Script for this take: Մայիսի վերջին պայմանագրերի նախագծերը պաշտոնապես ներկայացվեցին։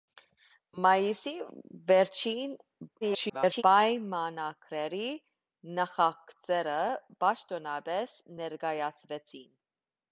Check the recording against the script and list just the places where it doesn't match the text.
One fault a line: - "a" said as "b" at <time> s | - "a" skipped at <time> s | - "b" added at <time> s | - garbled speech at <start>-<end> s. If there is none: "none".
- garbled speech at 3.0-3.6 s